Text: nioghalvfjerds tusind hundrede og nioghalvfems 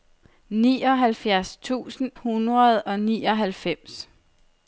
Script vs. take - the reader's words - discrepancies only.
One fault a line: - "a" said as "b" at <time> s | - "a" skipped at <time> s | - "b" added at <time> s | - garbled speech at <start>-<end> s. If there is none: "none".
none